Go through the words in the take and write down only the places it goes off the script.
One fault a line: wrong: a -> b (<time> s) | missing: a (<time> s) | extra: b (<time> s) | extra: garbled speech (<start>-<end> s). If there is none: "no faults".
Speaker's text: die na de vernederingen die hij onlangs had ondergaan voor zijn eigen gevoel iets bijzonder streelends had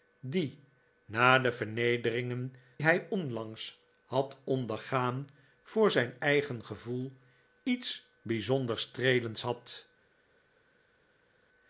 missing: die (2.5 s)